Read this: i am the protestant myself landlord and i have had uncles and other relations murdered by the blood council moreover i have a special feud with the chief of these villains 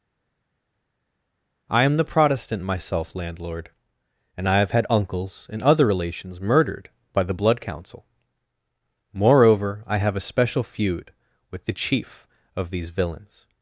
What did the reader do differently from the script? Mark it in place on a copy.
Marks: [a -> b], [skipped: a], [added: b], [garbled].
i am the protestant myself landlord and i have had uncles and other relations murdered by the blood council moreover i have a special feud with the chief of these villains